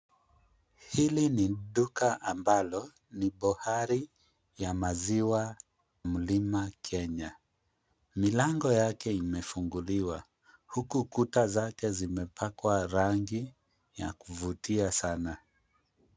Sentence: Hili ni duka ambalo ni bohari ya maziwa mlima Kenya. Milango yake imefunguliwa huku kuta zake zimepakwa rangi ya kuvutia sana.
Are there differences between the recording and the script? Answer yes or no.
no